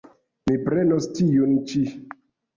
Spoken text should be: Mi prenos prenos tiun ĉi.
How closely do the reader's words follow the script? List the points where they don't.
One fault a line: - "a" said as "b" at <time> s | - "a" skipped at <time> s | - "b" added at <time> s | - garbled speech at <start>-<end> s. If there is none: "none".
- "prenos" skipped at 1.1 s